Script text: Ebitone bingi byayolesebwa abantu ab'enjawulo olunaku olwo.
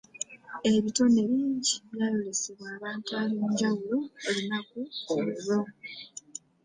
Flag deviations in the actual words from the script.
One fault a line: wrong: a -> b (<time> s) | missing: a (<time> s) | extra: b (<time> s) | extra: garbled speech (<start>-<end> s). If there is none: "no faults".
no faults